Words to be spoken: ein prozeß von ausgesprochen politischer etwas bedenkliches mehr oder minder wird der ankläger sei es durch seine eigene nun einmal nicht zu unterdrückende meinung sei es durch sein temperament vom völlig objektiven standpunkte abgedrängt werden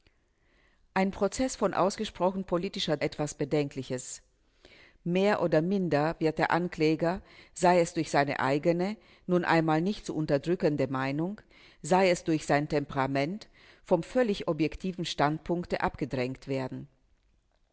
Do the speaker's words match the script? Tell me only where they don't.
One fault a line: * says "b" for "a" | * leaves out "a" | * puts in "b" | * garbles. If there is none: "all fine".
all fine